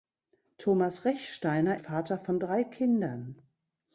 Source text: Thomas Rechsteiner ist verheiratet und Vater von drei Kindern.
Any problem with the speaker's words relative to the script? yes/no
yes